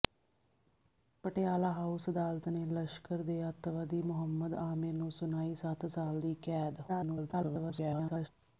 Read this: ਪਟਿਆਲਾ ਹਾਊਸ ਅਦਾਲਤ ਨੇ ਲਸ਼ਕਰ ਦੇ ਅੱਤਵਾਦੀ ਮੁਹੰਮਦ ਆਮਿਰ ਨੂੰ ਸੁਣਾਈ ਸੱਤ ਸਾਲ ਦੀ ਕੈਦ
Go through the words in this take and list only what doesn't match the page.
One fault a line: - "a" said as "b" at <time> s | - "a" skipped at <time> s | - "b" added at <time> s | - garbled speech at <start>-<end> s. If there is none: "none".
- garbled speech at 6.9-8.3 s